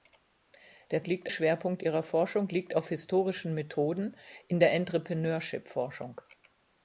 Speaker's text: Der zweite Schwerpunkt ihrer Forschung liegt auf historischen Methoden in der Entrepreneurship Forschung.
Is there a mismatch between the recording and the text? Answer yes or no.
yes